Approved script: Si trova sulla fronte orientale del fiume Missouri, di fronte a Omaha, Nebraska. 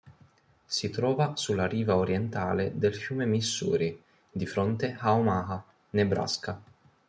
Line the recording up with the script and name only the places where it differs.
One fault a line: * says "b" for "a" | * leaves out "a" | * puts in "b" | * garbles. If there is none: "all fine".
* says "riva" for "fronte"